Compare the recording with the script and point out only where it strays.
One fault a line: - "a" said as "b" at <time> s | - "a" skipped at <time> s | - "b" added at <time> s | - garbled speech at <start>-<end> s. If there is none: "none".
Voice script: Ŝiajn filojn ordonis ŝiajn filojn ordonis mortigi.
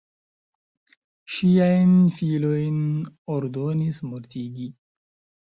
- "ŝiajn filojn ordonis" skipped at 4.0 s